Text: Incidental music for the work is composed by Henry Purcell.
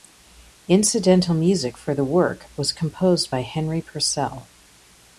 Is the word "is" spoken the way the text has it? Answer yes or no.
no